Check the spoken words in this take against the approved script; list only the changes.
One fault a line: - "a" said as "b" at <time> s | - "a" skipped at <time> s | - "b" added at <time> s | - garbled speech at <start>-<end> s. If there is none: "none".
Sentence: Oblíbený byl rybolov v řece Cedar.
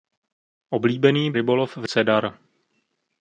- "byl" skipped at 1.3 s
- "řece" skipped at 1.8 s